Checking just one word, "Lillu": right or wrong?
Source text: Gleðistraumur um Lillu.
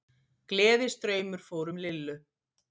right